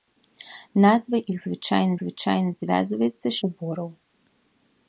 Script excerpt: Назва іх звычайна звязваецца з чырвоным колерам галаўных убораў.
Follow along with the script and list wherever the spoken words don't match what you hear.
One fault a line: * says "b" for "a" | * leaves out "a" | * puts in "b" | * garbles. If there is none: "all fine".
* puts in "звычайна"
* leaves out "чырвоным колерам галаўных"